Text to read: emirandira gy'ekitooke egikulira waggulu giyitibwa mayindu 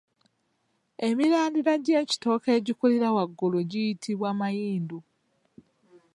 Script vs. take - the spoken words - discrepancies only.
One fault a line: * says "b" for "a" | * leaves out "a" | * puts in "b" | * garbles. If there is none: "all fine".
all fine